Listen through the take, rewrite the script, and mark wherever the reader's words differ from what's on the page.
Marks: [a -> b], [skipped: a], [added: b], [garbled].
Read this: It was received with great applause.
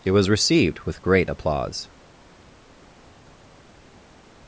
It was received with great applause.